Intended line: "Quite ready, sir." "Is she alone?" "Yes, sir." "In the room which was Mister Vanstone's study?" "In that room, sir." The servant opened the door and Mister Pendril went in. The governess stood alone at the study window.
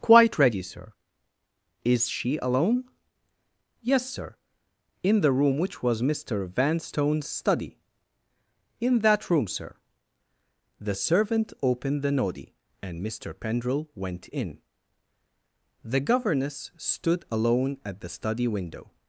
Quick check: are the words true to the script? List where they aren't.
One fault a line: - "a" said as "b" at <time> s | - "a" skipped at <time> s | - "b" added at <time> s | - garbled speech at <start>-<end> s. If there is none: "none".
- "door" said as "noddy" at 12.1 s